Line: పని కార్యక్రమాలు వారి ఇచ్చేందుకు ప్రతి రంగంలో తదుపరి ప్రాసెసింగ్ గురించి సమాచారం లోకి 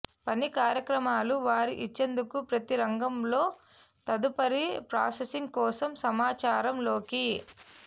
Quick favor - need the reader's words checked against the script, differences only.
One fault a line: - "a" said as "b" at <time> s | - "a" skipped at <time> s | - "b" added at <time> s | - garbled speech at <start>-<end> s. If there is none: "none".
- "గురించి" said as "కోసం" at 5.6 s